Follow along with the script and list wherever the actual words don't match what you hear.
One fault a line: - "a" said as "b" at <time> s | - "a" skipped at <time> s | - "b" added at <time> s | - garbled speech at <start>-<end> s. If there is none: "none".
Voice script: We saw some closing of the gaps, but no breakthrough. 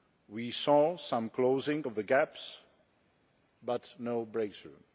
none